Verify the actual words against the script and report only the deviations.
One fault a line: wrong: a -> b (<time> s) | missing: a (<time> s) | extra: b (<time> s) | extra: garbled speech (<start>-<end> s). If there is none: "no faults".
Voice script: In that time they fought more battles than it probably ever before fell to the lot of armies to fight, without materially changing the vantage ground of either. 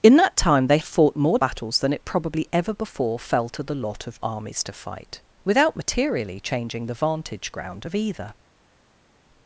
no faults